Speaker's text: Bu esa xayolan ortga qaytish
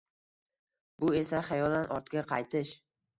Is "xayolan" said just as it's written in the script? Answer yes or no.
yes